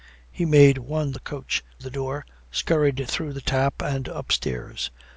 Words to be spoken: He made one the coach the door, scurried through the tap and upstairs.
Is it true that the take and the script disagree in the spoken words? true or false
false